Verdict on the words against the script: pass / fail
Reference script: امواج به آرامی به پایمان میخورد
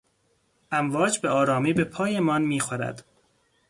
pass